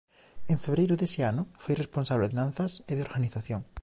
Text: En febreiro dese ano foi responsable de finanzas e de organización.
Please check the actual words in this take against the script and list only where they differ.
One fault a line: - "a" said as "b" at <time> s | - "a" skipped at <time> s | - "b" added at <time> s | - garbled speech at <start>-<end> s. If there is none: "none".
- "de" skipped at 2.3 s